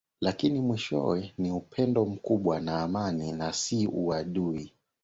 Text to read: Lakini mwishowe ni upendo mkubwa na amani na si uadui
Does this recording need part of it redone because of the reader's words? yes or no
no